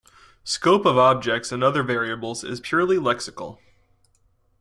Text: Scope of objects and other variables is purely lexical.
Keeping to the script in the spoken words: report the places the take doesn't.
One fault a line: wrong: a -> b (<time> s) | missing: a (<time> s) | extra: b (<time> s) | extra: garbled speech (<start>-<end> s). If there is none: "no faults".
no faults